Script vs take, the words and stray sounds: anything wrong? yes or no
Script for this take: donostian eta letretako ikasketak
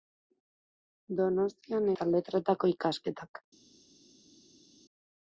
no